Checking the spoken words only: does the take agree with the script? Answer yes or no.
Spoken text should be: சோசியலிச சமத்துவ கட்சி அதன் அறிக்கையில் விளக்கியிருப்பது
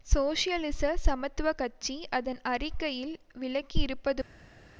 yes